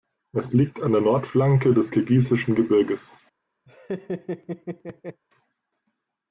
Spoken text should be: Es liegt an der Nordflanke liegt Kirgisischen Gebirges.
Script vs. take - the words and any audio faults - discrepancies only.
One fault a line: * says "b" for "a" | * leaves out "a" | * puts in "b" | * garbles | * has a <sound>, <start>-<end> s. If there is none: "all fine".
* says "des" for "liegt"
* has a laugh, 3.7-5.2 s